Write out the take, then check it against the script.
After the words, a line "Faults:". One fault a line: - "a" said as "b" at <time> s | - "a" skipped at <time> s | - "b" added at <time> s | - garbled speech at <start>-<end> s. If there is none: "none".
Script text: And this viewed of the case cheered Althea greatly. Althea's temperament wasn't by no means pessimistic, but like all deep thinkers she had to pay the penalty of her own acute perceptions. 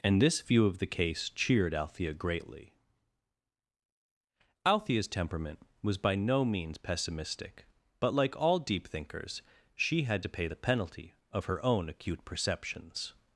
And this view of the case cheered Althea greatly. Althea's temperament was by no means pessimistic, but like all deep thinkers she had to pay the penalty of her own acute perceptions.
Faults:
- "viewed" said as "view" at 0.4 s
- "wasn't" said as "was" at 5.8 s